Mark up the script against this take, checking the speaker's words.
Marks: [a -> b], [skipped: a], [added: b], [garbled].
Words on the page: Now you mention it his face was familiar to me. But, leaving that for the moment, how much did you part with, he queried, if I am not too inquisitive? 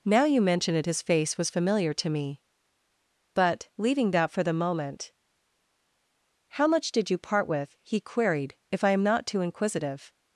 Now you mention it his face was familiar to me. But, leaving that for the moment, how much did you part with, he queried, if I am not too inquisitive?